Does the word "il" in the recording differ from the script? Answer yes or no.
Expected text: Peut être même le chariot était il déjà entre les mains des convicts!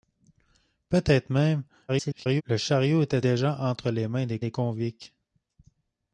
yes